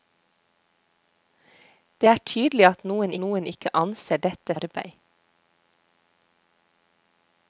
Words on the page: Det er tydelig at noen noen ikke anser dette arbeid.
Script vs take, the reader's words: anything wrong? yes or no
no